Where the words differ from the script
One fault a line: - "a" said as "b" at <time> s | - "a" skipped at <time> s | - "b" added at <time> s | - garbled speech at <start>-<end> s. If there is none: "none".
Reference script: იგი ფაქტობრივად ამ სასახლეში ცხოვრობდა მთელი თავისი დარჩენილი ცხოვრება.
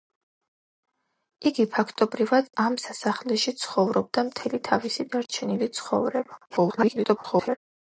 - garbled speech at 6.5-7.6 s